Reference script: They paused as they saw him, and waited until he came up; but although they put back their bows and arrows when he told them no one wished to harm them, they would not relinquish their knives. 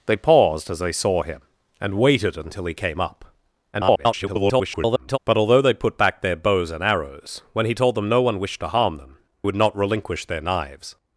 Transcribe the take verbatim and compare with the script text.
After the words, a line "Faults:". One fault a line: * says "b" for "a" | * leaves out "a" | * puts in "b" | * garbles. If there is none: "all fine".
They paused as they saw him, and waited until he came up; [garbled] but although they put back their bows and arrows when he told them no one wished to harm them, would not relinquish their knives.
Faults:
* garbles
* leaves out "they"